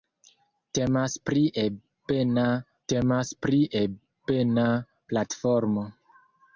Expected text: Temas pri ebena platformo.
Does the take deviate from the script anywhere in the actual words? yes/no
yes